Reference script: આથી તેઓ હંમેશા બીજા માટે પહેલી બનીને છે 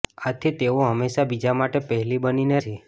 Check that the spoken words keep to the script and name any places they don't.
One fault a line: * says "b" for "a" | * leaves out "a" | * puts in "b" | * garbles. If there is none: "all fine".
all fine